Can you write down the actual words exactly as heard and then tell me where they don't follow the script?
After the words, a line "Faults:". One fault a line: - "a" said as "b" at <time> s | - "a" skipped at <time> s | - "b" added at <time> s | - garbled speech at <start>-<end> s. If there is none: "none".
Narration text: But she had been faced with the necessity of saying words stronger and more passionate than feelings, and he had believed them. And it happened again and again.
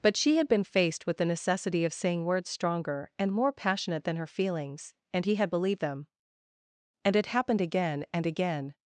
But she had been faced with the necessity of saying words stronger and more passionate than her feelings, and he had believed them. And it happened again and again.
Faults:
- "her" added at 4.2 s